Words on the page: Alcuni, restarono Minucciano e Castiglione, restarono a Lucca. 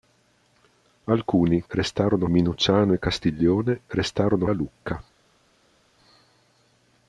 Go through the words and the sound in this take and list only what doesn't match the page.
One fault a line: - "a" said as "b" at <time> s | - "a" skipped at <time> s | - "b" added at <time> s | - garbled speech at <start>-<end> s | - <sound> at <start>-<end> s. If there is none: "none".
none